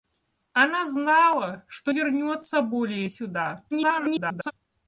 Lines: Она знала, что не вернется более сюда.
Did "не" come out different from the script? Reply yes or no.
yes